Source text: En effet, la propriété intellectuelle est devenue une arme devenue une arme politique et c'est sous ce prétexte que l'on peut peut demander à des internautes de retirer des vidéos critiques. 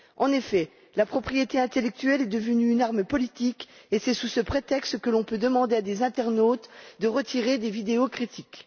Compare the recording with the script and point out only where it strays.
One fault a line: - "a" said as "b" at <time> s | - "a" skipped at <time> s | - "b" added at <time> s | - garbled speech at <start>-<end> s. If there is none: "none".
- "devenue une arme" skipped at 3.0 s
- "peut" skipped at 5.4 s